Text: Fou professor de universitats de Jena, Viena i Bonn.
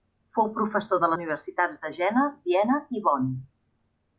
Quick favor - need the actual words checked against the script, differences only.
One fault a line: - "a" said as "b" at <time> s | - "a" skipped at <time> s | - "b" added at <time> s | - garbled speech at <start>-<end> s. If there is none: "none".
none